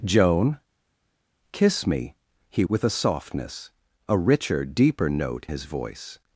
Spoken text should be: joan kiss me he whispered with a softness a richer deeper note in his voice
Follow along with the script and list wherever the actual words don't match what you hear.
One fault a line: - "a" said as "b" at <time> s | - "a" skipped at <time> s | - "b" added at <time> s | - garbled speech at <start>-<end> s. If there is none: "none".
- "whispered" skipped at 2.6 s
- "in" skipped at 5.5 s